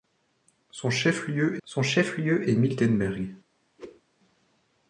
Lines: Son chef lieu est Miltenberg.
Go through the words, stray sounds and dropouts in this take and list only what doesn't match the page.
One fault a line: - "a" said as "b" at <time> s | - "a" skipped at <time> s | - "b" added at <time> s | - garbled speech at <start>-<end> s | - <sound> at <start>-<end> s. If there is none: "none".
- "son chef lieu" added at 1.6 s
- whoosh at 3.8-4.0 s